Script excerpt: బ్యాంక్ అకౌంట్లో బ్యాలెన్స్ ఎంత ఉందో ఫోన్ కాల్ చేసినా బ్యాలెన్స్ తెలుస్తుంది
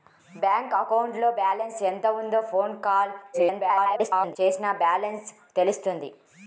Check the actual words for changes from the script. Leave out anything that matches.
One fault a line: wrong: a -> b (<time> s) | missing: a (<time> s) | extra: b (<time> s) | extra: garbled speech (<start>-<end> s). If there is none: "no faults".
extra: garbled speech (3.3-4.4 s)